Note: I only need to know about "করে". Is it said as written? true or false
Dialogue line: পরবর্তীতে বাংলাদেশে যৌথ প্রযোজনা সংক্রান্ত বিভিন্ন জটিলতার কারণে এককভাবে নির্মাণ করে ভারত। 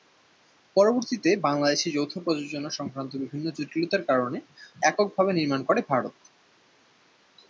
true